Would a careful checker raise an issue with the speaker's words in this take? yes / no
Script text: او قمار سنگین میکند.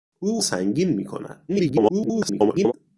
yes